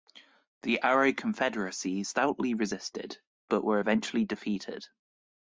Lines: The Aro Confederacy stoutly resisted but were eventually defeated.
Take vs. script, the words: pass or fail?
pass